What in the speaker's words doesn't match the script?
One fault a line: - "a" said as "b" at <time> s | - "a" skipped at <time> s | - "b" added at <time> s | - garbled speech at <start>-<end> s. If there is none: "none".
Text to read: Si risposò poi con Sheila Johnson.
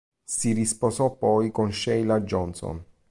none